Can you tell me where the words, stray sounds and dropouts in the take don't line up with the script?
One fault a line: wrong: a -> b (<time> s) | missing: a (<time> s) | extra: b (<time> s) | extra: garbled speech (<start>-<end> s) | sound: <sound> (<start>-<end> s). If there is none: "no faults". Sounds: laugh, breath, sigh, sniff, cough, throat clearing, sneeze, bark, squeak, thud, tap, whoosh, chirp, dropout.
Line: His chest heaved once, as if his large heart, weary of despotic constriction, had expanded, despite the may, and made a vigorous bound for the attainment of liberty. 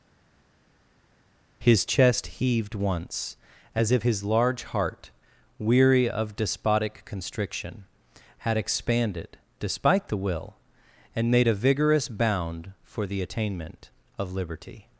wrong: may -> will (10.2 s)